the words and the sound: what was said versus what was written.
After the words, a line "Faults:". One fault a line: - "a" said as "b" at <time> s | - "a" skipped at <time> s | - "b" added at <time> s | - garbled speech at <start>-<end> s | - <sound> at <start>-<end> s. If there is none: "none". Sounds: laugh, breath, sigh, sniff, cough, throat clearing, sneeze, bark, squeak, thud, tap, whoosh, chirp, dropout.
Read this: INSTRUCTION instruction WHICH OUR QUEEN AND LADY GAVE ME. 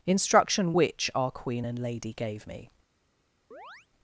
INSTRUCTION WHICH OUR QUEEN AND LADY GAVE ME.
Faults:
- "instruction" skipped at 0.7 s
- chirp at 3.5-3.9 s